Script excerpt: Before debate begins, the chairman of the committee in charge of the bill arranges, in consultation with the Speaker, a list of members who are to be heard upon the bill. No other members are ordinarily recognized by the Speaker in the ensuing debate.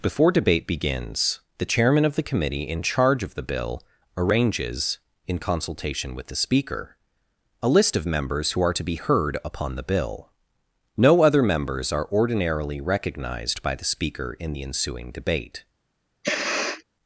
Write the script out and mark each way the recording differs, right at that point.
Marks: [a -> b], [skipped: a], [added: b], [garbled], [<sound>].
Before debate begins, the chairman of the committee in charge of the bill arranges, in consultation with the Speaker, a list of members who are to be heard upon the bill. No other members are ordinarily recognized by the Speaker in the ensuing debate. [sniff]